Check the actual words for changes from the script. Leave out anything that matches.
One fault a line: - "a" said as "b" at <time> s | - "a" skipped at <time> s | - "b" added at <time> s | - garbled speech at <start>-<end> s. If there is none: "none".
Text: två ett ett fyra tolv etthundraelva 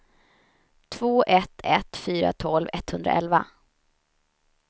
none